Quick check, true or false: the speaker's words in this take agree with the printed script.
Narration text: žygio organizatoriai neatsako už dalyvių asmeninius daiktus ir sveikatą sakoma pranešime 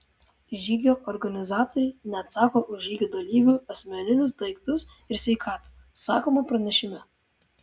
false